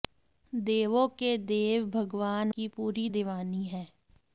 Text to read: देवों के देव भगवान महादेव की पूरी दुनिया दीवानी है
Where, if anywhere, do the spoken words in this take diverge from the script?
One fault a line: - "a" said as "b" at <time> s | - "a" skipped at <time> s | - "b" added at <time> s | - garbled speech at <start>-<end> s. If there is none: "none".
- "महादेव" skipped at 2.5 s
- "दुनिया" skipped at 3.1 s